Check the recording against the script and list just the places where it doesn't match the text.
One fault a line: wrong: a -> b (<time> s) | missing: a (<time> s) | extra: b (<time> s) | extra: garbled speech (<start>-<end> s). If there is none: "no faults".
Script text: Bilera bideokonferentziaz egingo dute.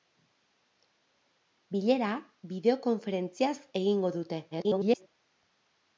extra: garbled speech (4.5-5.1 s)